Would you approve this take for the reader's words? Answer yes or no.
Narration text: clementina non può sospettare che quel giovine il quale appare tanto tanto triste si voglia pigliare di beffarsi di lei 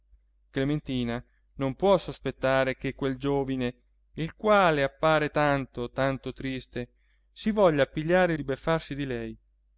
yes